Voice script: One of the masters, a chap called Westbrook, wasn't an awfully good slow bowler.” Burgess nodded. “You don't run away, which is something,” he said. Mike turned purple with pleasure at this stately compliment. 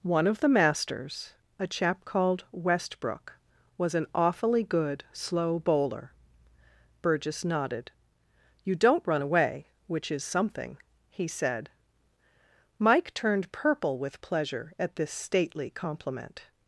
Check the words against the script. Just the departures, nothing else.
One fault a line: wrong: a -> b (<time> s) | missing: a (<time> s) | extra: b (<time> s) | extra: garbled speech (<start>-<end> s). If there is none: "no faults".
wrong: wasn't -> was (3.8 s)